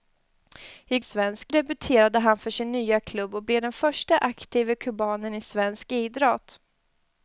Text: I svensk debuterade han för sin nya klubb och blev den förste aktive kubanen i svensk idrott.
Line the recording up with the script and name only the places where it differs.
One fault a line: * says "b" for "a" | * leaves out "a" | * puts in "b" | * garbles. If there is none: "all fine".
all fine